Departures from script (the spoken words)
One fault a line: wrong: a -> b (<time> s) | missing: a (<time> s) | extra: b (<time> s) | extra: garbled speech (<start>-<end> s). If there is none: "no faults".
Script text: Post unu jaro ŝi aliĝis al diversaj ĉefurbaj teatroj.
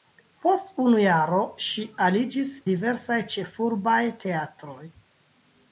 missing: al (2.5 s)